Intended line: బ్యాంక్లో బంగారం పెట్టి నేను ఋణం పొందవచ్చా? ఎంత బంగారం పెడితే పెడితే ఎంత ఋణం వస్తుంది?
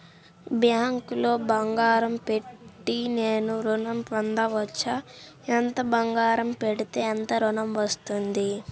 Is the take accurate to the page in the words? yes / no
no